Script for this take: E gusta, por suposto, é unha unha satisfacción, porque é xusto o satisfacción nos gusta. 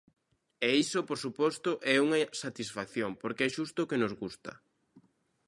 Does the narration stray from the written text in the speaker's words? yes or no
yes